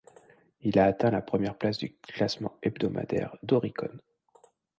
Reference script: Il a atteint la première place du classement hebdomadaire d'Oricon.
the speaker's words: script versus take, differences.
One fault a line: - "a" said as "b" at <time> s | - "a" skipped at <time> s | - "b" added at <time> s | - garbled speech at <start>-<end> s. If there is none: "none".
none